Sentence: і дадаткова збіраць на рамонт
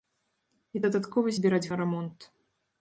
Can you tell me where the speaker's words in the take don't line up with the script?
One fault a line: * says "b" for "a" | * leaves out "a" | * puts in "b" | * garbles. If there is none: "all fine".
all fine